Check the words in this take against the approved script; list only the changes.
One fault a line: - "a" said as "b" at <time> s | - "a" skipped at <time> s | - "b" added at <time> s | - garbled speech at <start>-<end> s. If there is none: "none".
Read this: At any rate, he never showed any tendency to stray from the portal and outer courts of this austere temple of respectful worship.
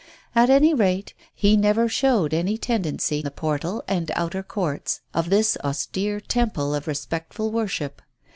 - "to stray from" skipped at 3.2 s